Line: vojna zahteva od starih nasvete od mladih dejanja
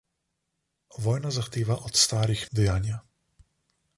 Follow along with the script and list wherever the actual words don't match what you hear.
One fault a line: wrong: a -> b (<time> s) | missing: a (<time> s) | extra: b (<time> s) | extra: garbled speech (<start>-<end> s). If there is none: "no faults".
missing: nasvete od mladih (2.5 s)